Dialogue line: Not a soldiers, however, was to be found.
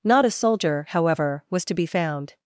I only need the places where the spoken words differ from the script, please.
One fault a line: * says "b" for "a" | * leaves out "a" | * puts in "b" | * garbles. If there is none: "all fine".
* says "soldier" for "soldiers"